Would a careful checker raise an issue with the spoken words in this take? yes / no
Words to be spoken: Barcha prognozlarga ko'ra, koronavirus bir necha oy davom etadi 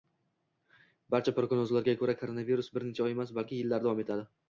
yes